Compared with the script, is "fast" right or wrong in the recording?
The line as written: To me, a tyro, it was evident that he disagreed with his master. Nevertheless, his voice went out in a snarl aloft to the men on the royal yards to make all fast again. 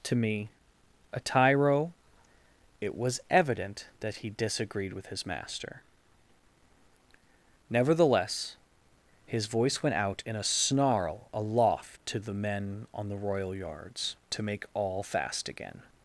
right